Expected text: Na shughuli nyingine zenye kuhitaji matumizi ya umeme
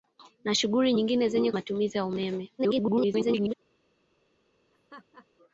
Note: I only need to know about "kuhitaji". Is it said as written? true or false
false